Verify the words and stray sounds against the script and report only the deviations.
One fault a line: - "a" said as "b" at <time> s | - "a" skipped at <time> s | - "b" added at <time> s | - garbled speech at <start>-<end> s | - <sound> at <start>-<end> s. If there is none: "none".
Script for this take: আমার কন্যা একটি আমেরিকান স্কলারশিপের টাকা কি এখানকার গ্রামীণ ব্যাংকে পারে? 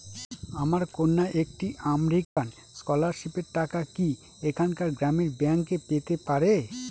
- dropout at 2.2-2.4 s
- "পেতে" added at 5.9 s